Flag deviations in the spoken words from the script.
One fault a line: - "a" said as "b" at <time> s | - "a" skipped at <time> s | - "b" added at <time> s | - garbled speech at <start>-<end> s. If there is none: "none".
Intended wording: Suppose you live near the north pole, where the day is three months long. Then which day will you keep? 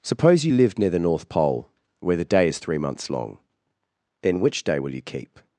none